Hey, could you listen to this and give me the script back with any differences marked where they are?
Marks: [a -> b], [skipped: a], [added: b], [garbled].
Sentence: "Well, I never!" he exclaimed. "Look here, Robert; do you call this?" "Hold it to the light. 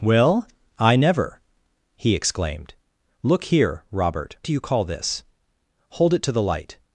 "Well, I never!" he exclaimed. "Look here, Robert; do you call this?" "Hold it to the light.